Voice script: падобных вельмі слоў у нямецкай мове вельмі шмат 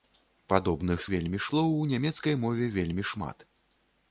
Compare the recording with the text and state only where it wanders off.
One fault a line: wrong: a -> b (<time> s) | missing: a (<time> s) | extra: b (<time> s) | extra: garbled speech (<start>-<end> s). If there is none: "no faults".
no faults